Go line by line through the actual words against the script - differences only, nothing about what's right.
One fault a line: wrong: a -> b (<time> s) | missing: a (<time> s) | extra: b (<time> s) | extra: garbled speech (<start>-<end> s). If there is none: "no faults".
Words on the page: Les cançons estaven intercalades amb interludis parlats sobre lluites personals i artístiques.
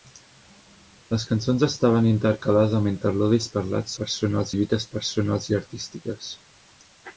wrong: sobre -> personals (4.0 s)